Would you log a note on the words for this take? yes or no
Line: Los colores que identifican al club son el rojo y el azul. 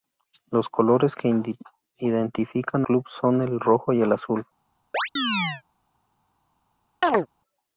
yes